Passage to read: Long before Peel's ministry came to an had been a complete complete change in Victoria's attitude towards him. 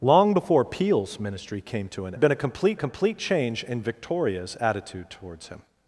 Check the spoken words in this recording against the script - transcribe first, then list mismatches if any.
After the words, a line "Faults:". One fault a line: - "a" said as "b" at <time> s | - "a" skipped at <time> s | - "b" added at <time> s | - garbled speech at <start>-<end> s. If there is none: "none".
Long before Peel's ministry came to an had been a complete complete change in Victoria's attitude towards him.
Faults:
none